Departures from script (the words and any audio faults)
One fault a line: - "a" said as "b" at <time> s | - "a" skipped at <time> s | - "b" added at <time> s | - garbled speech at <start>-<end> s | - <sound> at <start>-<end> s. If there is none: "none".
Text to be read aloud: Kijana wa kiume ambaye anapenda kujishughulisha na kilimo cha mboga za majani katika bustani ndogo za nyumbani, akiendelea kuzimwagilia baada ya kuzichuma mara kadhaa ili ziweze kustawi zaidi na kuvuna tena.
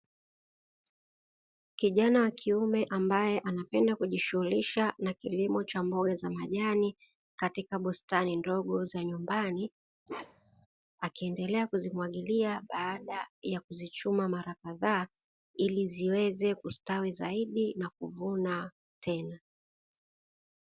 - bark at 10.1-10.7 s